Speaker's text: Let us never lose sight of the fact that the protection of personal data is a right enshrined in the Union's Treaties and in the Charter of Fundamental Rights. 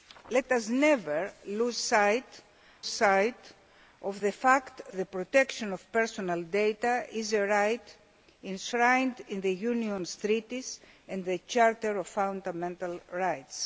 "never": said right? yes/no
yes